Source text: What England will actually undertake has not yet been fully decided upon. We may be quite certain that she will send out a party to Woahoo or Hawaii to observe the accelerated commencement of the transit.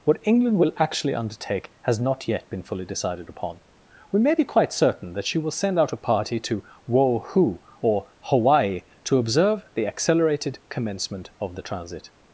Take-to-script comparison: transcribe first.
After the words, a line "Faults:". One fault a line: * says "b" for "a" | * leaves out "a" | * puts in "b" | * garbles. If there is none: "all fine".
What England will actually undertake has not yet been fully decided upon. We may be quite certain that she will send out a party to Woahoo or Hawaii to observe the accelerated commencement of the transit.
Faults:
all fine